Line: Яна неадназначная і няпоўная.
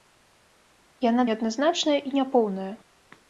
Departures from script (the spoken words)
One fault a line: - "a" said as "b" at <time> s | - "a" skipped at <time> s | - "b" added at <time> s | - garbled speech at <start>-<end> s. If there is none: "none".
none